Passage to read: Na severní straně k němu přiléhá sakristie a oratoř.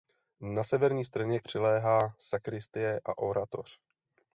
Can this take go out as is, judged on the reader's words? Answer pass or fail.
fail